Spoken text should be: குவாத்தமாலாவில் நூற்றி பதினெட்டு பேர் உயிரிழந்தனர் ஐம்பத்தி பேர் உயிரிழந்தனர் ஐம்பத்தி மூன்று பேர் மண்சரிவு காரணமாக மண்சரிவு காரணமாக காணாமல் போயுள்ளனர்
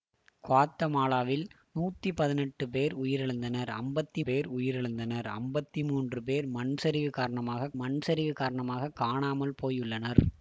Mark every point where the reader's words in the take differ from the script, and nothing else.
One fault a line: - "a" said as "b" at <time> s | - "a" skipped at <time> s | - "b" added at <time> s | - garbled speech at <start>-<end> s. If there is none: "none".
none